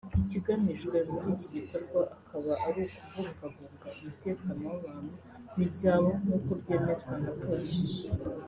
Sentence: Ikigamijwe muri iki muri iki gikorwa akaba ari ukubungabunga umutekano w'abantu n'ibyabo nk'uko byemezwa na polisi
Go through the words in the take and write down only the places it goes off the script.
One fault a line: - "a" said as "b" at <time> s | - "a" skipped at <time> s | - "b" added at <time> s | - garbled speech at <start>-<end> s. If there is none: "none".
- "muri iki" skipped at 1.5 s